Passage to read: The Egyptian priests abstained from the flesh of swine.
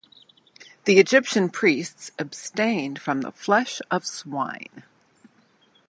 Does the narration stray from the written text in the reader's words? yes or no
no